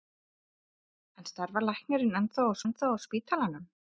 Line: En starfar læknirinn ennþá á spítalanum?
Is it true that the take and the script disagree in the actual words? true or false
true